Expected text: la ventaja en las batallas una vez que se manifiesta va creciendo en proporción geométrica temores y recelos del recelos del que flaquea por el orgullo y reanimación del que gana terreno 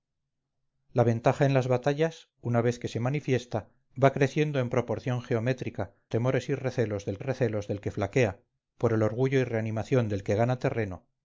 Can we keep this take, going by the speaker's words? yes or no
yes